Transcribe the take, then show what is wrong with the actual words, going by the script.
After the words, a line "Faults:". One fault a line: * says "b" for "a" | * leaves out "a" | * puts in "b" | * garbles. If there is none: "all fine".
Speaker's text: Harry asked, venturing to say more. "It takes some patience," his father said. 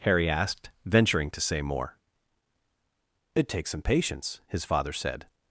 Harry asked, venturing to say more. "It takes some patience," his father said.
Faults:
all fine